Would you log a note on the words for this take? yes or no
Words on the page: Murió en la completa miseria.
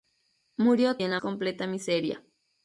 no